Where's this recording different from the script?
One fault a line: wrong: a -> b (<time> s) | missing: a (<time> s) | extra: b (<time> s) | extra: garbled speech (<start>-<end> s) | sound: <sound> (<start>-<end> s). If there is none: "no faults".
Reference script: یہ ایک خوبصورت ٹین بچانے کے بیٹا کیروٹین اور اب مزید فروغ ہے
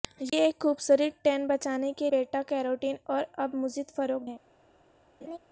sound: laugh (5.2-5.4 s)